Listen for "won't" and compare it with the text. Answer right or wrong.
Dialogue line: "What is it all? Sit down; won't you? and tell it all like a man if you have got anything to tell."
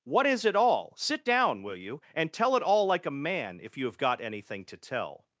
wrong